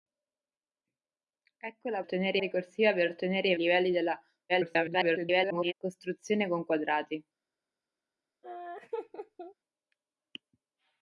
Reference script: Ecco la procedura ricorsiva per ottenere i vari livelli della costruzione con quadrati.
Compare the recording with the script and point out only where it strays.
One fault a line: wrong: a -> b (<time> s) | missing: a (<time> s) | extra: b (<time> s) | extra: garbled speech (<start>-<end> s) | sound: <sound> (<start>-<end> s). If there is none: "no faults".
wrong: procedura -> ottenere (2.0 s)
missing: vari (3.5 s)
extra: garbled speech (4.5-5.7 s)
sound: laugh (8.4-9.5 s)